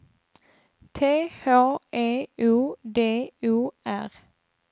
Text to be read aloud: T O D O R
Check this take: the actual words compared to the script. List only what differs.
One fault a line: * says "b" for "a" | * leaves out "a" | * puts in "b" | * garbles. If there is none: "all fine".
* puts in "H E"